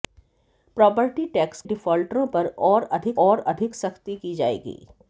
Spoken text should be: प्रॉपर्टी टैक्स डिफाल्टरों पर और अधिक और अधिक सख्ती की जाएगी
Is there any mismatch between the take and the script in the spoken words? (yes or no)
no